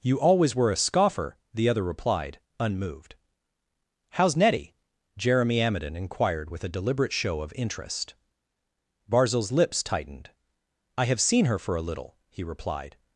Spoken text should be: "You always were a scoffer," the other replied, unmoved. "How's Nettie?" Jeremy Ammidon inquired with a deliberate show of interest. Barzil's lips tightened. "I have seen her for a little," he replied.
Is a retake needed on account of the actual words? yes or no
no